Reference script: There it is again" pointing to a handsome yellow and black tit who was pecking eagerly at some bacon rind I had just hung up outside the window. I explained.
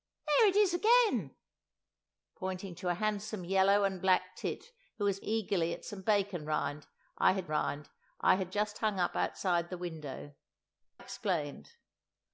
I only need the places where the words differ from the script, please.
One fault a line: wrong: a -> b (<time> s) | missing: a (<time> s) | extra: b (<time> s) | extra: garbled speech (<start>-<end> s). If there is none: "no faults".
missing: pecking (5.2 s)
extra: rind I had (7.5 s)
missing: I (10.3 s)